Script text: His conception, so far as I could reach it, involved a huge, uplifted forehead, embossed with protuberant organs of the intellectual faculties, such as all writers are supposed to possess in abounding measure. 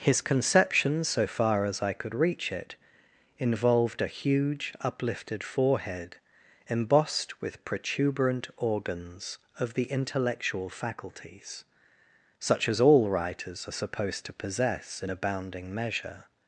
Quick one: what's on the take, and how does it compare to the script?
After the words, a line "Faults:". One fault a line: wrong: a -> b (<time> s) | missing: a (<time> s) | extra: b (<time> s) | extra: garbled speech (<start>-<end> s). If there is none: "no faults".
His conception, so far as I could reach it, involved a huge, uplifted forehead, embossed with protuberant organs of the intellectual faculties, such as all writers are supposed to possess in abounding measure.
Faults:
no faults